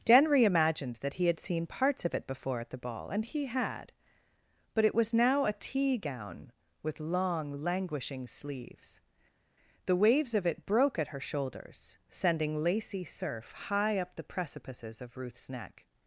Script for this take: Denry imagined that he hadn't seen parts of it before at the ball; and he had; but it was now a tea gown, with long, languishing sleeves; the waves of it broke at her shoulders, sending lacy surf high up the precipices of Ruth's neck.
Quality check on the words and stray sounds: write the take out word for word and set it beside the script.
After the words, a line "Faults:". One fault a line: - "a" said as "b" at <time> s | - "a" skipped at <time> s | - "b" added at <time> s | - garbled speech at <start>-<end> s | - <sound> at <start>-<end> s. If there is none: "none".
Denry imagined that he had seen parts of it before at the ball; and he had; but it was now a tea gown, with long, languishing sleeves; the waves of it broke at her shoulders, sending lacy surf high up the precipices of Ruth's neck.
Faults:
- "hadn't" said as "had" at 1.3 s